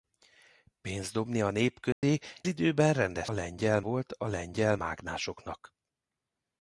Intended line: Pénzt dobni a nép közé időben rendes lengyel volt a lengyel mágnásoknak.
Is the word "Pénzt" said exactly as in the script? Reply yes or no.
yes